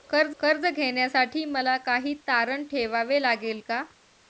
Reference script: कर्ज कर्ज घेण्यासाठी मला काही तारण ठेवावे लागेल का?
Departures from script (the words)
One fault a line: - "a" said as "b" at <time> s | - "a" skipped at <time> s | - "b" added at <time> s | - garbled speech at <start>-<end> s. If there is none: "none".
none